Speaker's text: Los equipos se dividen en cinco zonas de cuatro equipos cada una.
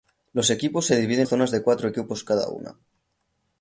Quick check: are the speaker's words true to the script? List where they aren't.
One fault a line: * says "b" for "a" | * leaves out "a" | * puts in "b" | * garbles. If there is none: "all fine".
* leaves out "en cinco"